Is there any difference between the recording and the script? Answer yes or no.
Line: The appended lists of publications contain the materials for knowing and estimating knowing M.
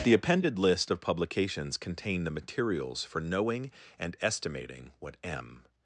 yes